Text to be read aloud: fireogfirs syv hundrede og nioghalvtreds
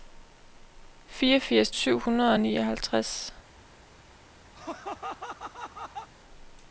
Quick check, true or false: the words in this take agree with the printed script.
true